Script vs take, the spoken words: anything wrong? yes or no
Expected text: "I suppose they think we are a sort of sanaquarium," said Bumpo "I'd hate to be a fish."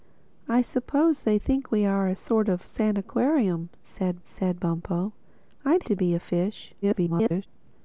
yes